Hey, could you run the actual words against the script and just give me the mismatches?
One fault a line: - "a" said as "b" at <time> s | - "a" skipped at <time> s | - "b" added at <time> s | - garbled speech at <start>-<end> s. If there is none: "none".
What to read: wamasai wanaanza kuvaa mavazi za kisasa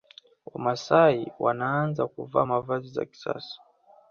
none